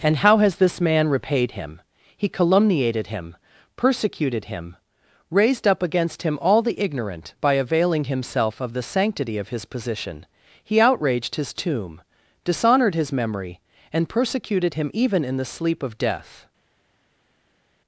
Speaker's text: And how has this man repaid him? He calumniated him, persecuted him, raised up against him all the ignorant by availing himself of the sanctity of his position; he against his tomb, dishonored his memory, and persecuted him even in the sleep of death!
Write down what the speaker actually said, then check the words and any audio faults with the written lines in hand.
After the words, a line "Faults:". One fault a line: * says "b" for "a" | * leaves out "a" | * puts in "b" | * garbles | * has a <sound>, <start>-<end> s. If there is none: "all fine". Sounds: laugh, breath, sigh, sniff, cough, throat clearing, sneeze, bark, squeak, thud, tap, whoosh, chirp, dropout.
And how has this man repaid him? He calumniated him, persecuted him, raised up against him all the ignorant by availing himself of the sanctity of his position; he outraged his tomb, dishonored his memory, and persecuted him even in the sleep of death!
Faults:
* says "outraged" for "against"